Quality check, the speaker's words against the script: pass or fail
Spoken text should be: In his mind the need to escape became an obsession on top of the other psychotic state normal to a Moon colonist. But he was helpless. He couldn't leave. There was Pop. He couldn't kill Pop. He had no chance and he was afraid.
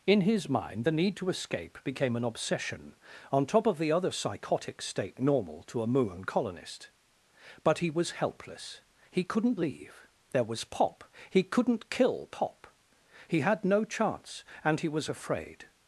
pass